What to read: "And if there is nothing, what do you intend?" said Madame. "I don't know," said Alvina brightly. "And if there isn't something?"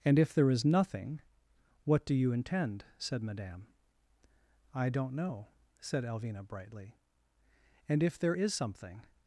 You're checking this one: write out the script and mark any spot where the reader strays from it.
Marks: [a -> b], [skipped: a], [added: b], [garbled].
"And if there is nothing, what do you intend?" said Madame. "I don't know," said Alvina brightly. "And if there [isn't -> is] something?"